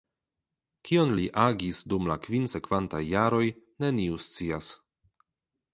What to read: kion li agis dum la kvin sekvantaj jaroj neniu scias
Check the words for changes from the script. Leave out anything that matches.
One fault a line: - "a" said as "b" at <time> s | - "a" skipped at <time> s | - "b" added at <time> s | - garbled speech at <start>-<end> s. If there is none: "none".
none